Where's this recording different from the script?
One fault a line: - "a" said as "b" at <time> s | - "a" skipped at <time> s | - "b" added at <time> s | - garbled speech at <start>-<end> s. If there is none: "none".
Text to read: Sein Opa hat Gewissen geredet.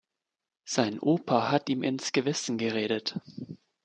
- "ihm ins" added at 1.7 s